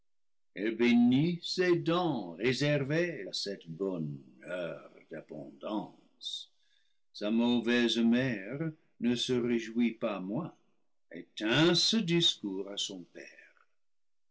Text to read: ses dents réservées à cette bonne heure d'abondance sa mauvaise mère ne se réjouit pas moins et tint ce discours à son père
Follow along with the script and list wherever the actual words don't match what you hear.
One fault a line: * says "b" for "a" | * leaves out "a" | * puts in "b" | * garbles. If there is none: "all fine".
all fine